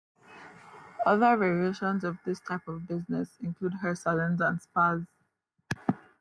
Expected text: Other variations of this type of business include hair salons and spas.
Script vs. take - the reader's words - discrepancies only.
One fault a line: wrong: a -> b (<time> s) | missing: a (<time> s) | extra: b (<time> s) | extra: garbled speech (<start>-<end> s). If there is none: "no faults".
no faults